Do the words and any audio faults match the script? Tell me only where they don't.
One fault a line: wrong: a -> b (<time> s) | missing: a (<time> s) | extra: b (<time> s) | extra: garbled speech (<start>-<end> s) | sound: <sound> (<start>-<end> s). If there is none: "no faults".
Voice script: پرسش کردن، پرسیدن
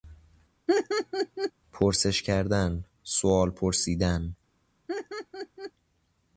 sound: laugh (0.7-1.5 s)
extra: سئوال (3.0 s)
sound: laugh (4.9-5.7 s)